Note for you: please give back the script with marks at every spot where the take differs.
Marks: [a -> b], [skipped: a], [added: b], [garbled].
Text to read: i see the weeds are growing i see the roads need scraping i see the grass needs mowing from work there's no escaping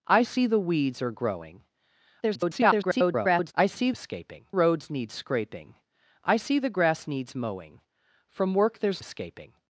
i see the weeds are growing [garbled] i see [the -> escaping] roads need scraping i see the grass needs mowing from work there's [skipped: no] escaping